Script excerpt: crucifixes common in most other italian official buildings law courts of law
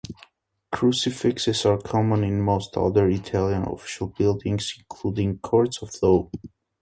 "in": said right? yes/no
yes